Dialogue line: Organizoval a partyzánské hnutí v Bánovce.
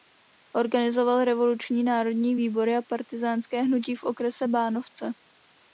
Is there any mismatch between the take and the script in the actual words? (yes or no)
yes